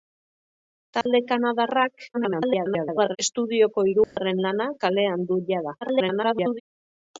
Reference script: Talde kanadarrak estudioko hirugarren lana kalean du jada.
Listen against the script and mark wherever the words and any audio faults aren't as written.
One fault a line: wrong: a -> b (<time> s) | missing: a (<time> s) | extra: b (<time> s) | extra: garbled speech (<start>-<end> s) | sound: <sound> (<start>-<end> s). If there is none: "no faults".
sound: dropout (1.0-1.1 s)
extra: garbled speech (2.1-3.2 s)
sound: dropout (4.0-4.2 s)
extra: garbled speech (5.8-6.6 s)